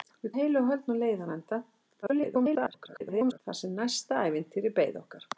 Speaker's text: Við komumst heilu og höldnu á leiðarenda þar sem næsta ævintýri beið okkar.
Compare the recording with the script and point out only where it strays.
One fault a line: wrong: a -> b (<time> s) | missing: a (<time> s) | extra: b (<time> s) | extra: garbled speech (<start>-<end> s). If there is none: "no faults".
missing: komumst (0.3 s)
extra: garbled speech (2.0-3.4 s)